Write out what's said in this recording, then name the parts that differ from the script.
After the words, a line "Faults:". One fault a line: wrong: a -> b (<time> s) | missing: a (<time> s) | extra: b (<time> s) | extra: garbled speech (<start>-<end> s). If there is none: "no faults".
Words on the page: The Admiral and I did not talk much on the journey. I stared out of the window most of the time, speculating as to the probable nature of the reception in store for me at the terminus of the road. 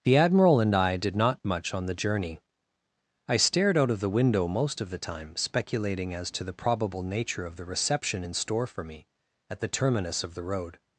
The Admiral and I did not much on the journey. I stared out of the window most of the time, speculating as to the probable nature of the reception in store for me at the terminus of the road.
Faults:
missing: talk (1.4 s)